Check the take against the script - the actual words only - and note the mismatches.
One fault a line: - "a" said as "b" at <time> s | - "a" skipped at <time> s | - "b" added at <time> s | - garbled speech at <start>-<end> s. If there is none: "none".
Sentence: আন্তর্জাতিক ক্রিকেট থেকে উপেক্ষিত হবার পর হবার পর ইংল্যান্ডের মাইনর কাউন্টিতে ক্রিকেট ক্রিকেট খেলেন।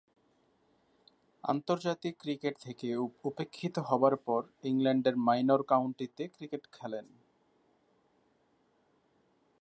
- "হবার পর" skipped at 4.4 s
- "ক্রিকেট" skipped at 6.6 s